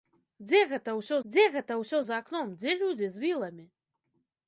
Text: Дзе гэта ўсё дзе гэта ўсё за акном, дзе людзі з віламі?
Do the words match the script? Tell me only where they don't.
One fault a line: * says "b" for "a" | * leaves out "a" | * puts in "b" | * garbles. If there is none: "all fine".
all fine